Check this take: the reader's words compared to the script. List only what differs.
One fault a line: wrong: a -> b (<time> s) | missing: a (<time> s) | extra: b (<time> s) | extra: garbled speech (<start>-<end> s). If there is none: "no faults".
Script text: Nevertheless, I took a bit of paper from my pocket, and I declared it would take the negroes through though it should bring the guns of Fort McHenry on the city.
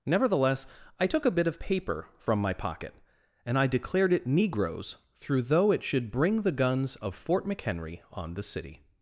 missing: would take the (4.3 s)